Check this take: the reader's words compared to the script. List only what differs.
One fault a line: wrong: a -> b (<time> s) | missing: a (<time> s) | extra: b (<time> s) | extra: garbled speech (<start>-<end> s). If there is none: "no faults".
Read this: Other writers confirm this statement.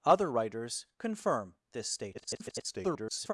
extra: garbled speech (2.1-3.3 s)